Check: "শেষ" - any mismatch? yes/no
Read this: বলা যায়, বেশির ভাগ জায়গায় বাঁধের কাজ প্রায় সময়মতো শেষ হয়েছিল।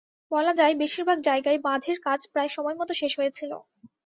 no